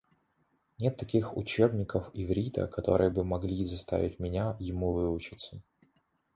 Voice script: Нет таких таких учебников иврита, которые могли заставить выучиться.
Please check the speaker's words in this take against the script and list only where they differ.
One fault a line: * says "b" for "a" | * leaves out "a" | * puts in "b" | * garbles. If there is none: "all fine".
* leaves out "таких"
* puts in "бы"
* puts in "меня ему"